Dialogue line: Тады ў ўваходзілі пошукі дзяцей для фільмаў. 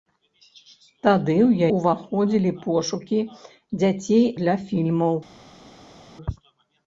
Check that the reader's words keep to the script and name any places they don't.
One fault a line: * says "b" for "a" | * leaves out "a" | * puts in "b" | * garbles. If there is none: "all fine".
all fine